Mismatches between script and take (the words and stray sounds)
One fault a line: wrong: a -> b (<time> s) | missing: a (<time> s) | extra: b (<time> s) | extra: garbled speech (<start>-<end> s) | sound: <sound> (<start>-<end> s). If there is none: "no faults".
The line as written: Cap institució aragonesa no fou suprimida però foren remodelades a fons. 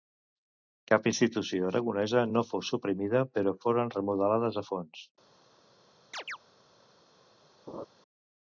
sound: chirp (6.1-6.4 s)
sound: laugh (7.7-7.9 s)